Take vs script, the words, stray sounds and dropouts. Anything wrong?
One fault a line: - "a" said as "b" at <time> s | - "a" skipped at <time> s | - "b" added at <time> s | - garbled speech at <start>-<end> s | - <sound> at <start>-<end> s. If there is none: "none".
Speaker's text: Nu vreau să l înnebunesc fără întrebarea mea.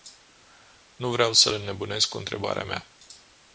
- "fără" said as "cu" at 2.1 s